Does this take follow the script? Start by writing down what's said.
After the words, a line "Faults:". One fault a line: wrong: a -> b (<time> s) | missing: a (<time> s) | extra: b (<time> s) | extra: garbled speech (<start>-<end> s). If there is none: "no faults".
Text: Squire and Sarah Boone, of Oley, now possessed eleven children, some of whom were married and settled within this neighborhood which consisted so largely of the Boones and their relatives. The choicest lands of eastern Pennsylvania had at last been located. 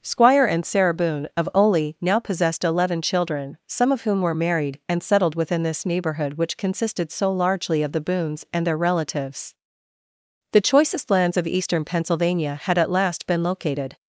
Squire and Sarah Boone, of Oley, now possessed eleven children, some of whom were married and settled within this neighborhood which consisted so largely of the Boones and their relatives. The choicest lands of eastern Pennsylvania had at last been located.
Faults:
no faults